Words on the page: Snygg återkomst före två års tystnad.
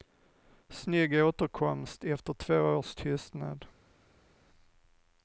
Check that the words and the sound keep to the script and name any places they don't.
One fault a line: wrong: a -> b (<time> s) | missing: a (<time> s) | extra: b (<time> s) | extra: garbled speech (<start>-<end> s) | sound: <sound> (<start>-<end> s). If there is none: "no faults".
wrong: före -> efter (2.0 s)